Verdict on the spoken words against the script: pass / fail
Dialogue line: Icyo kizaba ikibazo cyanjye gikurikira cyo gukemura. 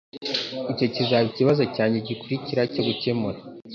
pass